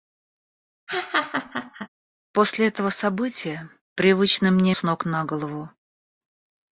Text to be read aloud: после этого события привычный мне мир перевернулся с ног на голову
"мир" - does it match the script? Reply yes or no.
no